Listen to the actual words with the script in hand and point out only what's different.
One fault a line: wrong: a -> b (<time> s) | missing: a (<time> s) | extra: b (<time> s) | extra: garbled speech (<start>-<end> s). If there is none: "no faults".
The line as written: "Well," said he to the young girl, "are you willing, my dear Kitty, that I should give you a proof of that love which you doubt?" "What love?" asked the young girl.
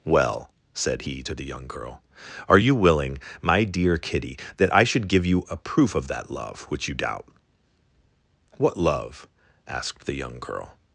no faults